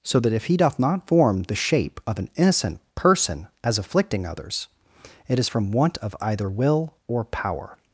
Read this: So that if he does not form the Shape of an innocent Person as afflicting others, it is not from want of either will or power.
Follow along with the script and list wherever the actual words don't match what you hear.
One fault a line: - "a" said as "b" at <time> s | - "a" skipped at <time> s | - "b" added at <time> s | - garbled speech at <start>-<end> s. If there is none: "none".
- "does" said as "doth" at 0.6 s
- "not" skipped at 5.5 s